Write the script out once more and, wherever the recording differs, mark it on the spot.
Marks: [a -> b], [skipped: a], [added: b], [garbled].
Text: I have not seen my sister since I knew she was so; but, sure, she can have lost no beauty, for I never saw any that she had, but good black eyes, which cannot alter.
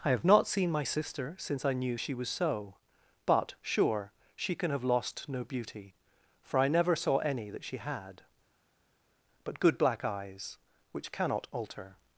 I have not seen my sister since I knew she was so; but, sure, she can have lost no beauty, for I never saw any that she had, but good black eyes, which cannot alter.